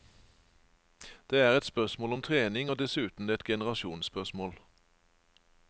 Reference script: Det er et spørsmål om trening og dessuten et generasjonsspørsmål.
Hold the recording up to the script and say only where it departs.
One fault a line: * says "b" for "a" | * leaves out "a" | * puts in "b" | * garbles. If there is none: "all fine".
all fine